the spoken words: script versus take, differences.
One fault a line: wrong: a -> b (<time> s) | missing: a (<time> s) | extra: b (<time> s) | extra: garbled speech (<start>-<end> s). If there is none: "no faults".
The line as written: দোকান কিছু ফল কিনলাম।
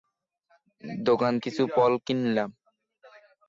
no faults